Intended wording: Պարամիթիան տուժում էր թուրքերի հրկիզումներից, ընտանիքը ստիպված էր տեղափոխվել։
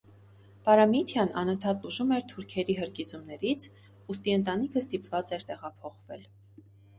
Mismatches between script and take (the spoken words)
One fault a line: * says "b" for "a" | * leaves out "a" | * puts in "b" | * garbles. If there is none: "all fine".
* puts in "անընդհատ"
* puts in "ուստի"